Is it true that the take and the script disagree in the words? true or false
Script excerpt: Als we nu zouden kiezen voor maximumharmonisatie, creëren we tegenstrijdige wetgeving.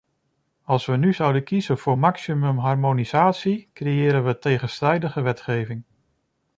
false